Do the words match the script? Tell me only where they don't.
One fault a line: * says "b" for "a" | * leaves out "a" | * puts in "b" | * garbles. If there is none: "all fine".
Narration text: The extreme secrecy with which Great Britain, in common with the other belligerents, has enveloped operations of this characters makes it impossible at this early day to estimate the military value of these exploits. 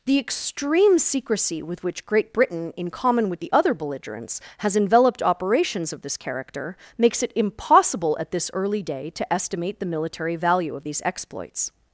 * says "character" for "characters"